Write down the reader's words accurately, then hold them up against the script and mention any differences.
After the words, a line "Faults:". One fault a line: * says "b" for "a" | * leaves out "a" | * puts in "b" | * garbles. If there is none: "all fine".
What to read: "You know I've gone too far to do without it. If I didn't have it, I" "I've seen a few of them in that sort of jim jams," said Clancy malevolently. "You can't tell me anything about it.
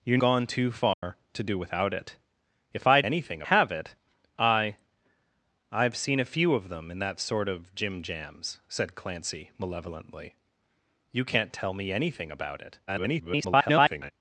"You gone too far to do without it. If I anything have it, I" "I've seen a few of them in that sort of jim jams," said Clancy malevolently. "You can't tell me anything about it. [garbled]
Faults:
* leaves out "know I've"
* says "anything" for "didn't"
* garbles